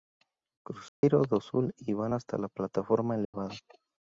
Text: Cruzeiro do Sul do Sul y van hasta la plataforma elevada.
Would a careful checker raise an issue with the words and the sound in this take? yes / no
yes